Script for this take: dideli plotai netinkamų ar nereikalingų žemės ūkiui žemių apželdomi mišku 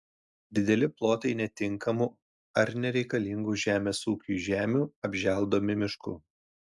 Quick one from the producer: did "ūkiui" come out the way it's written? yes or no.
yes